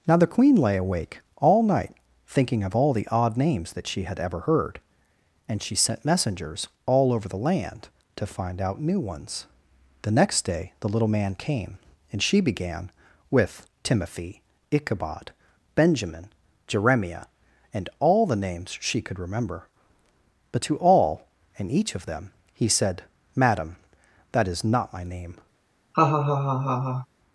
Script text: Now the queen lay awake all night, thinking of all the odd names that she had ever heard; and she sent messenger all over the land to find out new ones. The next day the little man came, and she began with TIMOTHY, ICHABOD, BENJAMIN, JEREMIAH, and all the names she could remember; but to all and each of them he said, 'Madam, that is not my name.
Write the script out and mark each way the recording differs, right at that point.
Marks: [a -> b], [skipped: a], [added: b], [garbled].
Now the queen lay awake all night, thinking of all the odd names that she had ever heard; and she sent [messenger -> messengers] all over the land to find out new ones. The next day the little man came, and she began with TIMOTHY, ICHABOD, BENJAMIN, JEREMIAH, and all the names she could remember; but to all and each of them he said, 'Madam, that is not my name.